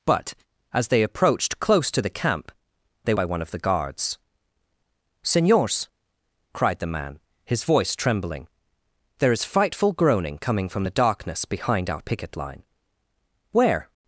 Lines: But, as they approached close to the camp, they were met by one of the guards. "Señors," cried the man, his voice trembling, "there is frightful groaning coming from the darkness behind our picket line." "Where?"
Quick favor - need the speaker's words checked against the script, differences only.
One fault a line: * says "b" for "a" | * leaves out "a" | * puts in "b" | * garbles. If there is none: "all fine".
* leaves out "were met"